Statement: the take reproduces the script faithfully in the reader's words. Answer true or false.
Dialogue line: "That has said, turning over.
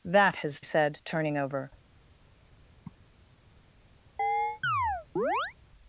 true